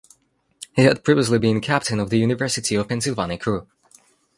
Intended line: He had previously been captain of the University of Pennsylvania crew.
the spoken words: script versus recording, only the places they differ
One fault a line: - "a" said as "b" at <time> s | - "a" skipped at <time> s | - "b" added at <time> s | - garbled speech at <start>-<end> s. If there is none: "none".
none